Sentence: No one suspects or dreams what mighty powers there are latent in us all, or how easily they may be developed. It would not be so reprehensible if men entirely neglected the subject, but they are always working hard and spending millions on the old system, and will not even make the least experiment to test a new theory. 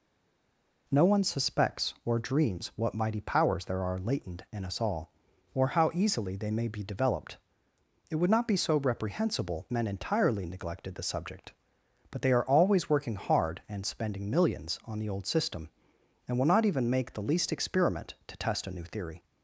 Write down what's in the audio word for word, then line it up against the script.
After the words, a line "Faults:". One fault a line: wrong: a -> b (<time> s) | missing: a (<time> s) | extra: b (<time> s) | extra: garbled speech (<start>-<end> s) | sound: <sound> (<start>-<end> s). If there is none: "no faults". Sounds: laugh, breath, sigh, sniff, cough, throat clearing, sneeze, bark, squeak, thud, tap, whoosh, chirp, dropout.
No one suspects or dreams what mighty powers there are latent in us all, or how easily they may be developed. It would not be so reprehensible men entirely neglected the subject, but they are always working hard and spending millions on the old system, and will not even make the least experiment to test a new theory.
Faults:
missing: if (9.7 s)